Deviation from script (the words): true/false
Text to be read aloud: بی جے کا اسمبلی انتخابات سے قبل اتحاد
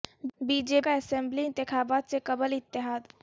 false